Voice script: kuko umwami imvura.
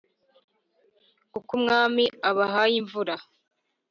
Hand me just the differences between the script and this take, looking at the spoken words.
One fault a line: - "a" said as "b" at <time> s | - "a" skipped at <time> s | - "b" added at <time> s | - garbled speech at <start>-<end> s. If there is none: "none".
- "abahaye" added at 2.3 s